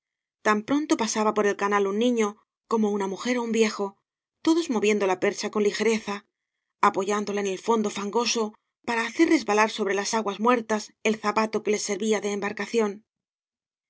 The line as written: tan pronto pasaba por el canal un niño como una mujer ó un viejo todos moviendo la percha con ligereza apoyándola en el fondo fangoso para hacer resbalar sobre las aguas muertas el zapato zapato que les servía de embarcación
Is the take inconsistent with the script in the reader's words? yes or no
yes